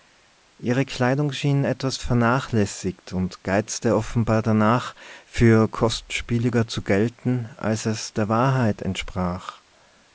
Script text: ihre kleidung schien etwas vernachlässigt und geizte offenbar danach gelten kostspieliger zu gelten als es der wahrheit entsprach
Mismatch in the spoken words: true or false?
true